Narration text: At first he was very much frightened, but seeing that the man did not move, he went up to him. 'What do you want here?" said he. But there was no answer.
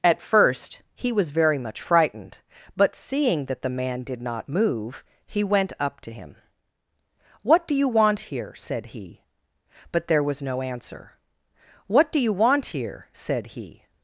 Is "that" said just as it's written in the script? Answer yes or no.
yes